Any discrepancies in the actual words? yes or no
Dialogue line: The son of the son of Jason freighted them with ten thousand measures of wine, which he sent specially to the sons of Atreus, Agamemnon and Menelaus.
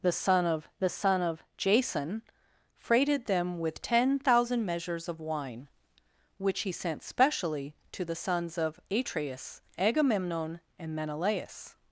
no